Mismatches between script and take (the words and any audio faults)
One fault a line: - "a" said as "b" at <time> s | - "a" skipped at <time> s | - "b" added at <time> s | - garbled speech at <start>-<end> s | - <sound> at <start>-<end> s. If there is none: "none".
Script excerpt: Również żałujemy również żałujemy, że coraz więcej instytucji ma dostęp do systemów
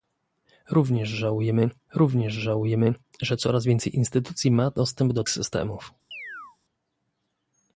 - chirp at 6.1-6.6 s